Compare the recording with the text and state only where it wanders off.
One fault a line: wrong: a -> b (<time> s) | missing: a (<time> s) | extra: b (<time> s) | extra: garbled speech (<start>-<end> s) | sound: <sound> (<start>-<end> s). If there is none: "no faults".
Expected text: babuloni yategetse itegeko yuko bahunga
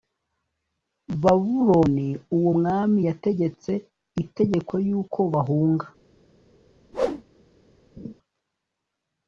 extra: uwo mwami (2.4 s)
sound: whoosh (6.9-7.2 s)
sound: laugh (8.0-8.1 s)